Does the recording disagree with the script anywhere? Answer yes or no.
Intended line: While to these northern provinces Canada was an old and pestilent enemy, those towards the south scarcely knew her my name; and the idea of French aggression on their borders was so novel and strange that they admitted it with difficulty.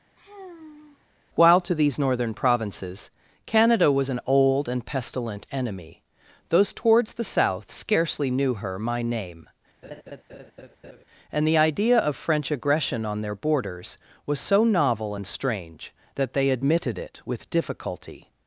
no